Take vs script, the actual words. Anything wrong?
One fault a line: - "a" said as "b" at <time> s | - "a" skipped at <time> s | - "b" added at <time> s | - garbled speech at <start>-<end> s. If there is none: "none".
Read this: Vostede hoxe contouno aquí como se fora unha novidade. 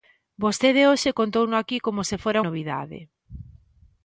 - "unha" skipped at 2.4 s